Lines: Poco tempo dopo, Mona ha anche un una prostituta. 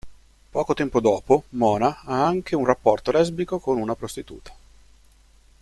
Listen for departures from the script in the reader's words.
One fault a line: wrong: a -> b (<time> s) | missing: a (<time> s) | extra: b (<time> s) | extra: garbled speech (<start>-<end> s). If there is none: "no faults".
extra: rapporto lesbico con (2.6 s)